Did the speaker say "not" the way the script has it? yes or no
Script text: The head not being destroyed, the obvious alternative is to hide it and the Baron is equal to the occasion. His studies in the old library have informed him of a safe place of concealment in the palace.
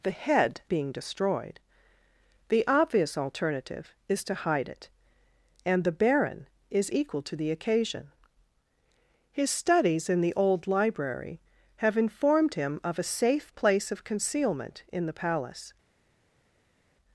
no